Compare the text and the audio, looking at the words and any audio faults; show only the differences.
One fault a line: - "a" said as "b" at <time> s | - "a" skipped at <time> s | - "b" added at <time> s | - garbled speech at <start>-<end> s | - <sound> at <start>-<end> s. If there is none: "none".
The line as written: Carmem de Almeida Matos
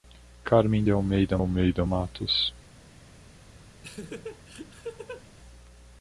- "Almeida" added at 1.4 s
- laugh at 3.8-5.3 s